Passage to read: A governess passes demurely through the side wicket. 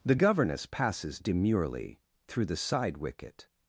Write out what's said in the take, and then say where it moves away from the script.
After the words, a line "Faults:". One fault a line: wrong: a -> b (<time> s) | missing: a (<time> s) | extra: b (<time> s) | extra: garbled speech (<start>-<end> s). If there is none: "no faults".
The governess passes demurely through the side wicket.
Faults:
wrong: A -> The (0.0 s)